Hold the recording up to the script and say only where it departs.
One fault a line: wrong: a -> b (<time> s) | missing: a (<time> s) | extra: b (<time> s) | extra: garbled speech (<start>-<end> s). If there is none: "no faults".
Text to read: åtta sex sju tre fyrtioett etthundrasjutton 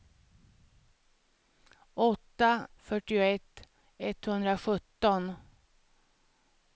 missing: sex sju tre (2.7 s)